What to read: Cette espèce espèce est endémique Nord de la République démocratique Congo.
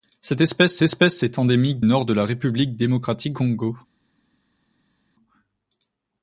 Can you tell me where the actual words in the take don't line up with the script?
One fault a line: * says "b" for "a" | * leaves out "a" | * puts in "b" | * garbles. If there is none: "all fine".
all fine